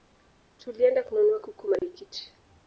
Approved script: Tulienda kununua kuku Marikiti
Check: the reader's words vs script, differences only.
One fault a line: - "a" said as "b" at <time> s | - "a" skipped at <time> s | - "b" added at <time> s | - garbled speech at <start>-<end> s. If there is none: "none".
none